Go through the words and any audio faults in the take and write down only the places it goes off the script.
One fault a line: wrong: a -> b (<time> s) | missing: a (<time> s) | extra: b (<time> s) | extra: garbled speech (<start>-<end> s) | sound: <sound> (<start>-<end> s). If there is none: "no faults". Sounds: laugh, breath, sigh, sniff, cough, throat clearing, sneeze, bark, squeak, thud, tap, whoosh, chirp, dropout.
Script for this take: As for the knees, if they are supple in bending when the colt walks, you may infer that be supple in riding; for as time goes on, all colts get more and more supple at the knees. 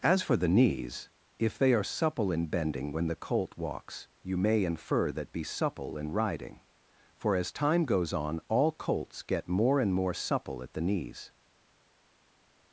no faults